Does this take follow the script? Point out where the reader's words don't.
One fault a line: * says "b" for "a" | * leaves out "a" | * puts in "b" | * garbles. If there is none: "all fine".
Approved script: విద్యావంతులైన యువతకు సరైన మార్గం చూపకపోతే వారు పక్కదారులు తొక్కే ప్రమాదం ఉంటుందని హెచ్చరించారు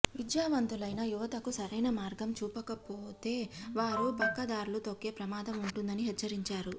all fine